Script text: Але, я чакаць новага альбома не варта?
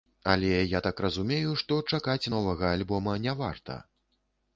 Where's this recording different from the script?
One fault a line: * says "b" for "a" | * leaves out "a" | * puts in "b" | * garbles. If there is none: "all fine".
* puts in "так разумею што"